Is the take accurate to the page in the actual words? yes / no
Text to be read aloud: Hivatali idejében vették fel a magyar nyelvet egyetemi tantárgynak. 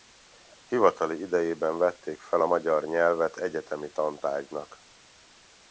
yes